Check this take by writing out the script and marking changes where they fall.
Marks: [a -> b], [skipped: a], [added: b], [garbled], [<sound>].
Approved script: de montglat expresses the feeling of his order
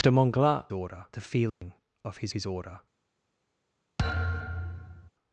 de montglat [expresses -> order] the feeling [dropout] of his [added: his] order [thud]